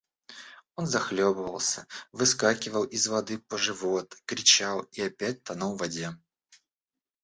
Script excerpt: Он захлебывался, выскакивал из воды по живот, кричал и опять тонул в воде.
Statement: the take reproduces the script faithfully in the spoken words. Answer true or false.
true